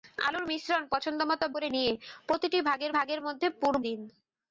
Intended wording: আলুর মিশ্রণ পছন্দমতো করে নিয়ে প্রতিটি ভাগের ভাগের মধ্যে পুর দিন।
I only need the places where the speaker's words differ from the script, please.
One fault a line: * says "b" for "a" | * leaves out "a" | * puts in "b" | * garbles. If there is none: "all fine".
all fine